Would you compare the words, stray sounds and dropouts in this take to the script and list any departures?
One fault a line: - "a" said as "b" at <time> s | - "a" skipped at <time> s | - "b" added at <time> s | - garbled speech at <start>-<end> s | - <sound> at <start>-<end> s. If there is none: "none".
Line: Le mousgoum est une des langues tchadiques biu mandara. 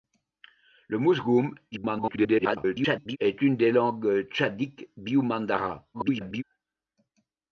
- garbled speech at 1.7-3.2 s
- garbled speech at 5.9-6.4 s